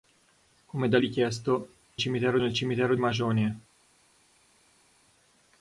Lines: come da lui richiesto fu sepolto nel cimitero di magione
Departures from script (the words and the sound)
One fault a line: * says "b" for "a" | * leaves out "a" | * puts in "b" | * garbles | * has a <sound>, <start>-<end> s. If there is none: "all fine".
* leaves out "lui"
* says "cimitero" for "sepolto"
* leaves out "di"